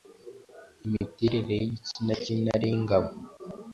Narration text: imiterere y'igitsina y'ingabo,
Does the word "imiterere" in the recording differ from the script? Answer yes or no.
no